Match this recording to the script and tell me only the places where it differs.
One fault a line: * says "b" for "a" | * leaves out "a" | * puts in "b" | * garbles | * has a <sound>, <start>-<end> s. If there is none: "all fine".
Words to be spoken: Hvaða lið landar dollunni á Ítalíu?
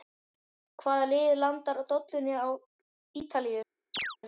* has a chirp, 3.9-4.2 s